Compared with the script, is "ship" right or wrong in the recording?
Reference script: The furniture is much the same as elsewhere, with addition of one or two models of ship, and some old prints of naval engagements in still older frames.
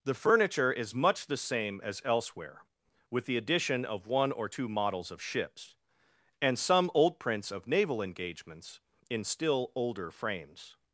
wrong